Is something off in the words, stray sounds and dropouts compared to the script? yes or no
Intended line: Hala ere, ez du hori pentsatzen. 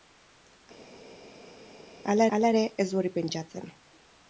yes